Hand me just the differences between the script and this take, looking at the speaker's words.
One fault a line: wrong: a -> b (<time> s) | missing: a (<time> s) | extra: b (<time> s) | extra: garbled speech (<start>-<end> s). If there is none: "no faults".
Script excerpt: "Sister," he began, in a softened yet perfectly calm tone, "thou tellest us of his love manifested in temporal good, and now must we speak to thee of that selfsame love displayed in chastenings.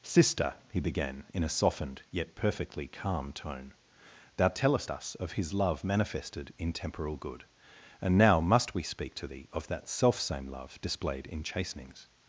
no faults